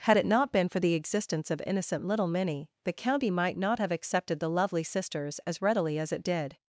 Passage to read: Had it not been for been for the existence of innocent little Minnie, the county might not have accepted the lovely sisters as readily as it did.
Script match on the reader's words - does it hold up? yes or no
no